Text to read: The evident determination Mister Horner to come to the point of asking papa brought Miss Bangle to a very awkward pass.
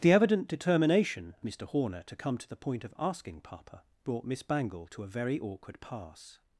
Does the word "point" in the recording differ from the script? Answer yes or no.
no